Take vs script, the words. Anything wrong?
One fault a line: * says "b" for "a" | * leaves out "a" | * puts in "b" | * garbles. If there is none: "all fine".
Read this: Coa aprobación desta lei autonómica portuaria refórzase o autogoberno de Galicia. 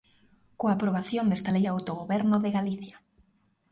* leaves out "autonómica portuaria refórzase"